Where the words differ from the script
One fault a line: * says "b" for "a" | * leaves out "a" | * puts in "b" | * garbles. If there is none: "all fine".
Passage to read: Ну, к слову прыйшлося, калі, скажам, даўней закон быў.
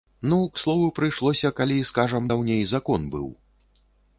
all fine